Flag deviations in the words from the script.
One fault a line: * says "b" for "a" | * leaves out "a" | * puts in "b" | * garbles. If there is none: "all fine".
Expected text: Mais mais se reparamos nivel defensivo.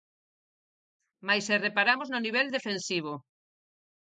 * leaves out "mais"
* puts in "no"